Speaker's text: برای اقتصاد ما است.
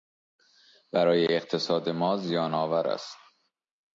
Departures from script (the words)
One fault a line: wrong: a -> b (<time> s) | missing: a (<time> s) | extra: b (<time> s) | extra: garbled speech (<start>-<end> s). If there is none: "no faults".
extra: زیانآور (2.2 s)